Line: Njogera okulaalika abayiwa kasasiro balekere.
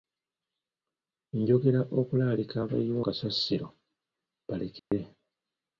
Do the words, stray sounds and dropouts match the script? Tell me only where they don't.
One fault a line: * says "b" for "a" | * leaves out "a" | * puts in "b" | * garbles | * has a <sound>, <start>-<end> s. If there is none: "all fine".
* has a dropout, 4.8-4.9 s